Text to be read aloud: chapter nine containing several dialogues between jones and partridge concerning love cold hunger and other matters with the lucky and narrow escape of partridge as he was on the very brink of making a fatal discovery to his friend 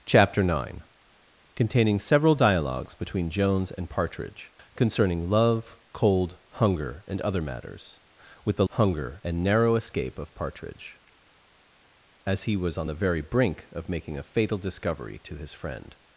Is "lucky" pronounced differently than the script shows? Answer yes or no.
yes